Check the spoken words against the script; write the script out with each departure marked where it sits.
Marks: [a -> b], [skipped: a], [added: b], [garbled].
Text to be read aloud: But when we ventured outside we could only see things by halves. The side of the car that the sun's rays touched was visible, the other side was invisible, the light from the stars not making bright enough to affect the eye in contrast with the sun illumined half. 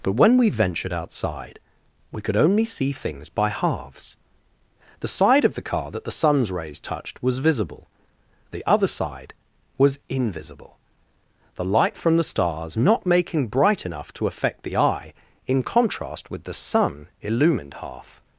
But when we ventured outside we could only see things by halves. The side of the car that the sun's rays touched was visible, the other side was invisible, the light from the stars not making bright enough to affect the eye in contrast with the sun illumined half.